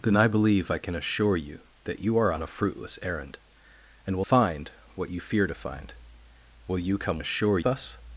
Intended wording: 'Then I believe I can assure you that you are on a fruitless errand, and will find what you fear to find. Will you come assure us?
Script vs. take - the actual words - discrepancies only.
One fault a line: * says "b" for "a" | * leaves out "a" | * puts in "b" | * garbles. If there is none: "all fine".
all fine